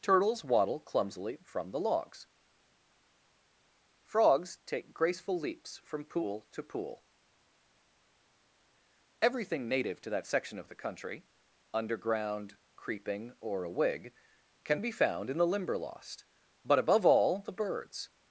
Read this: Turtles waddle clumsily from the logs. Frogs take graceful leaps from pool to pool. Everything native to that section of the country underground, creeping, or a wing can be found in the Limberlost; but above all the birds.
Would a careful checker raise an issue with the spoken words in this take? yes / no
yes